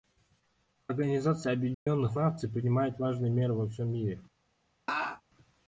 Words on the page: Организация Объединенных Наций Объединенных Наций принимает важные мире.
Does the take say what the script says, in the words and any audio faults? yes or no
no